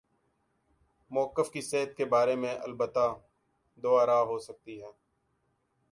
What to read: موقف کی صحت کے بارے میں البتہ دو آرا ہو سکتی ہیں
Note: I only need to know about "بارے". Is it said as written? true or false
true